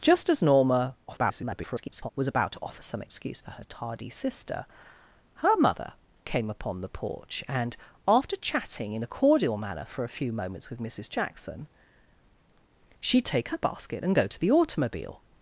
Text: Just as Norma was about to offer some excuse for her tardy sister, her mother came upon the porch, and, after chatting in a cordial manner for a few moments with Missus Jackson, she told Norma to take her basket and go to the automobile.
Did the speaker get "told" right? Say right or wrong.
wrong